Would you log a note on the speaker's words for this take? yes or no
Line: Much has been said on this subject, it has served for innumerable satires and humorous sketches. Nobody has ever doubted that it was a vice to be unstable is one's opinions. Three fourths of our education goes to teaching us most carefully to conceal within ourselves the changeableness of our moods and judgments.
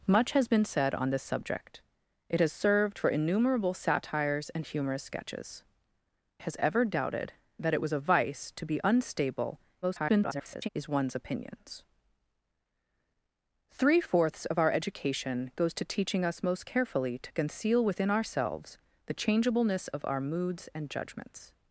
yes